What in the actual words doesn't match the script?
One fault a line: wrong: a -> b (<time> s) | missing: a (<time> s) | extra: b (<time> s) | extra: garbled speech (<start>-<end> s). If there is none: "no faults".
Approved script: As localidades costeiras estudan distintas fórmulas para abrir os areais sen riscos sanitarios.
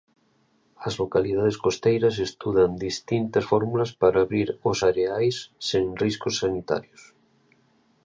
no faults